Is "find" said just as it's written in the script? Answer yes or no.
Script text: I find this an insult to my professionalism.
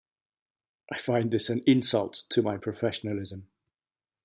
yes